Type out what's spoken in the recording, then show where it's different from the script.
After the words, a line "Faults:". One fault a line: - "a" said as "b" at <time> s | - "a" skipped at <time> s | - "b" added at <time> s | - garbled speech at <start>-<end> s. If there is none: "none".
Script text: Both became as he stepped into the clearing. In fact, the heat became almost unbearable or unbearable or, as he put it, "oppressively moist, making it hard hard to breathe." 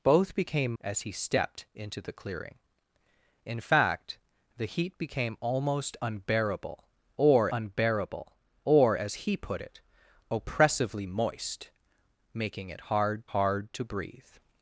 Both became as he stepped into the clearing. In fact, the heat became almost unbearable or unbearable or, as he put it, "oppressively moist, making it hard hard to breathe."
Faults:
none